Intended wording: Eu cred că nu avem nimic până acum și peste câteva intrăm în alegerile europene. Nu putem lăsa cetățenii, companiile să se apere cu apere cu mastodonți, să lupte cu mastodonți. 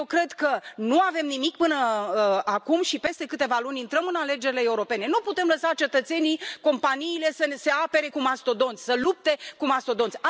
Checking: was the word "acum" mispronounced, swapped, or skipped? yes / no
no